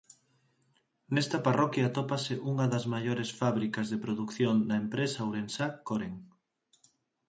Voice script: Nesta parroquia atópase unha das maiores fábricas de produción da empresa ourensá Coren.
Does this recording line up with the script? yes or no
yes